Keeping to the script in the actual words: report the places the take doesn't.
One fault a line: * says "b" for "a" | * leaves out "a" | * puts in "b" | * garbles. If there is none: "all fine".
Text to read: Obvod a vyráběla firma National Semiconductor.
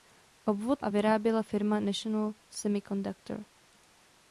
all fine